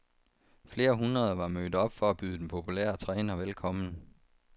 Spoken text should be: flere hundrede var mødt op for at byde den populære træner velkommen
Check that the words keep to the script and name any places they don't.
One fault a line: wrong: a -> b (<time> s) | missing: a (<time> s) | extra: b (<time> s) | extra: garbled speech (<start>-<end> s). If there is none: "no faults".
no faults